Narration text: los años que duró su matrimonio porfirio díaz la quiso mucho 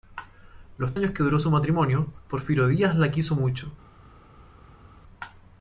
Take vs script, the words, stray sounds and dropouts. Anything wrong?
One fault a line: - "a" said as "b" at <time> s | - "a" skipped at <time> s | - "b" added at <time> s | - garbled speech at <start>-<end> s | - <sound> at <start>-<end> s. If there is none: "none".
none